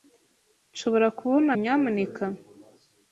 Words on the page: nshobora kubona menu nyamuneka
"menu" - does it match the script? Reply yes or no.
no